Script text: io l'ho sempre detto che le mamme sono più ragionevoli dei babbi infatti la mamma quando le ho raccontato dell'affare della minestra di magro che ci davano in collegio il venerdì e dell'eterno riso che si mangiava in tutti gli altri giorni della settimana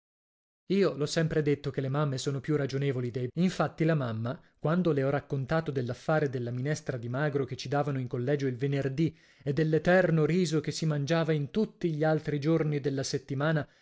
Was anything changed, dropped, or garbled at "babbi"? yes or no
yes